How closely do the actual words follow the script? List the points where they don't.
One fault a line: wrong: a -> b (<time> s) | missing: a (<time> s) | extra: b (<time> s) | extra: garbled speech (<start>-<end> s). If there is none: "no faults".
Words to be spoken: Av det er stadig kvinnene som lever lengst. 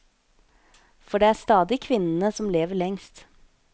wrong: Av -> For (1.0 s)